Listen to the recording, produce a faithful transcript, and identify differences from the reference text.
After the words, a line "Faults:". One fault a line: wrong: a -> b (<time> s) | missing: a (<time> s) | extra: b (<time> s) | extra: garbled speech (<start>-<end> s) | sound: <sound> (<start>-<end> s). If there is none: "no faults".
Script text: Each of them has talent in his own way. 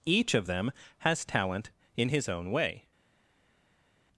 Each of them has talent in his own way.
Faults:
no faults